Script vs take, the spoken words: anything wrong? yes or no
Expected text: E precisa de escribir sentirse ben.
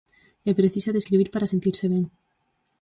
yes